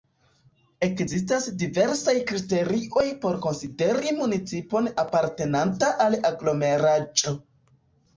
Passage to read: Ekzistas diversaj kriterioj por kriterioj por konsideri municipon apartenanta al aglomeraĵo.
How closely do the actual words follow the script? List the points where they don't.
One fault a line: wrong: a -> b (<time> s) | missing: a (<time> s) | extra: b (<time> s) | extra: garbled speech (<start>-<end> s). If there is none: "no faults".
missing: kriterioj por (3.4 s)